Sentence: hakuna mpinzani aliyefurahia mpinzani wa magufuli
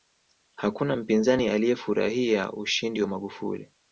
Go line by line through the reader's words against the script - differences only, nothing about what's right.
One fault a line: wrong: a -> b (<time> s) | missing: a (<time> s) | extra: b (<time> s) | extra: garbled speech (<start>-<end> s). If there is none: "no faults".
wrong: mpinzani -> ushindi (2.5 s)